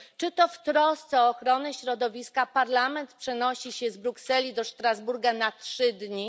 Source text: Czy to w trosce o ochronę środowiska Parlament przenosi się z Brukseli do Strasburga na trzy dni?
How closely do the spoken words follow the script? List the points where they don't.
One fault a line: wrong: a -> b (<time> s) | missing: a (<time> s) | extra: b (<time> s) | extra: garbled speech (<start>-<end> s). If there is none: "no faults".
no faults